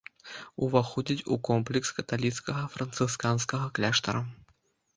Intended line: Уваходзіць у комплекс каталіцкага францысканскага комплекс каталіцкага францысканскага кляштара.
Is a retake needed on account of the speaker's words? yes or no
yes